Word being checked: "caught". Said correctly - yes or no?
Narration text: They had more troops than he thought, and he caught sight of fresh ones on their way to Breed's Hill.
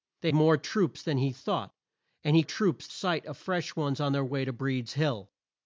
no